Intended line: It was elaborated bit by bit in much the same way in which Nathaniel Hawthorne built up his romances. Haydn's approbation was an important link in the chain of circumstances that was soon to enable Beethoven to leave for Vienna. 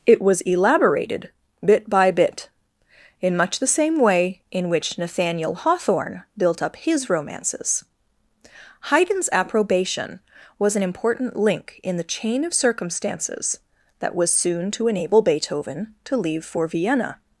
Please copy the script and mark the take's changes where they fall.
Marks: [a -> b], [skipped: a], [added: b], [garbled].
It was elaborated bit by bit in much the same way in which Nathaniel Hawthorne built up his romances. Haydn's approbation was an important link in the chain of circumstances that was soon to enable Beethoven to leave for Vienna.